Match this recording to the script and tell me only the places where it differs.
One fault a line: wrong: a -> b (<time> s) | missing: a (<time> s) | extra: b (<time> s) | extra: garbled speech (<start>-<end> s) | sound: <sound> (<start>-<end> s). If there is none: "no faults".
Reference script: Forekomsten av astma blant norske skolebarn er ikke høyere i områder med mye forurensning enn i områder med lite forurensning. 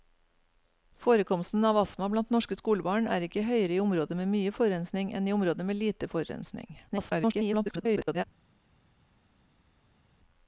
extra: garbled speech (6.9-8.2 s)